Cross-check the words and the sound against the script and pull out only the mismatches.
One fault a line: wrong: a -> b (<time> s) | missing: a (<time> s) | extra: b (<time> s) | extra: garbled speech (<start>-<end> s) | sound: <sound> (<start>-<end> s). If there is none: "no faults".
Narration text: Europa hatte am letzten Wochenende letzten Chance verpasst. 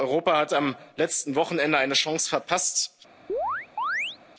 wrong: hatte -> hat (0.4 s)
wrong: letzten -> eine (1.8 s)
sound: chirp (3.3-4.2 s)